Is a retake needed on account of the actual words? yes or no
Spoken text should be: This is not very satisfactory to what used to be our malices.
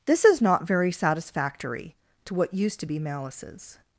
yes